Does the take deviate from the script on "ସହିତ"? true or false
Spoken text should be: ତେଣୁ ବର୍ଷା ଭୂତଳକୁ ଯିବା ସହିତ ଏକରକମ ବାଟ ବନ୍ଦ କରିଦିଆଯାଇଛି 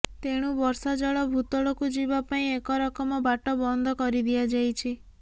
true